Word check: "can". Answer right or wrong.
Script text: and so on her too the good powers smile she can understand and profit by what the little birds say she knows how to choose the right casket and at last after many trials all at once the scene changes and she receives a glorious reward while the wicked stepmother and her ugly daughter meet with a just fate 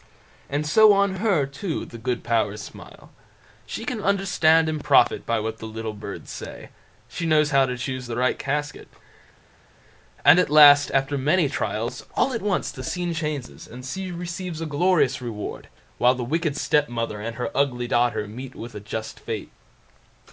right